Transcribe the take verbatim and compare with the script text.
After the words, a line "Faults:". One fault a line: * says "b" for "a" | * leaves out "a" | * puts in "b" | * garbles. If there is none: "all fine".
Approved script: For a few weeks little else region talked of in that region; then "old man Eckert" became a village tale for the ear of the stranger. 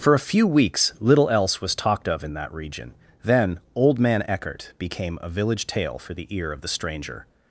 For a few weeks little else was talked of in that region; then "old man Eckert" became a village tale for the ear of the stranger.
Faults:
* says "was" for "region"